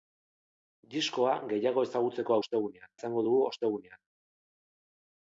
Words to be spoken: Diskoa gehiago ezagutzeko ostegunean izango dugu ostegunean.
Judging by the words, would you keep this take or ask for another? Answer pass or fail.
pass